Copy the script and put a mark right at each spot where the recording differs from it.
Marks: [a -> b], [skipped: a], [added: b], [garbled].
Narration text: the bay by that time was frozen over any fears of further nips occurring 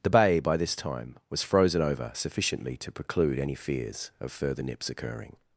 the bay by [that -> this] time was frozen over [added: sufficiently to preclude] any fears of further nips occurring